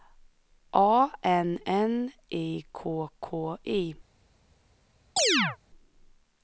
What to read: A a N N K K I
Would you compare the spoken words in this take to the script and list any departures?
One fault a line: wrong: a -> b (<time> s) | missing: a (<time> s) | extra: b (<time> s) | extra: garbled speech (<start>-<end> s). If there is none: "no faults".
wrong: a -> N (1.2 s)
wrong: N -> I (2.3 s)